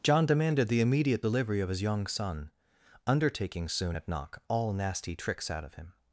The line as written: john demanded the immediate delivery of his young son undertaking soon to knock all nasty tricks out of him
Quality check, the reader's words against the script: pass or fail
fail